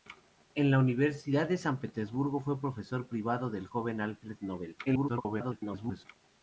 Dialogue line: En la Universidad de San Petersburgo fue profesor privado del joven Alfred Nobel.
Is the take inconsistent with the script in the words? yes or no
yes